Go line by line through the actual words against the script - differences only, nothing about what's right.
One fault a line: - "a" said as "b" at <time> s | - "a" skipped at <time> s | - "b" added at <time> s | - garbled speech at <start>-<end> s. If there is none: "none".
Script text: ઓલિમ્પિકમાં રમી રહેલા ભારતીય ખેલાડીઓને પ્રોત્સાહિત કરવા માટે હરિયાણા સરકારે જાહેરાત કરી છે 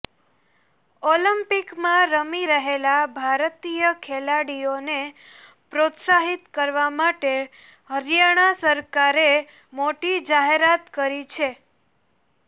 - "મોટી" added at 9.7 s